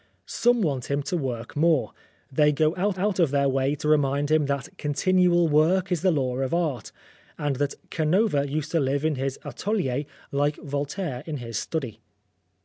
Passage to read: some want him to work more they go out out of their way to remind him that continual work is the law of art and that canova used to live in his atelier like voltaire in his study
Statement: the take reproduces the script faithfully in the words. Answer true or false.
true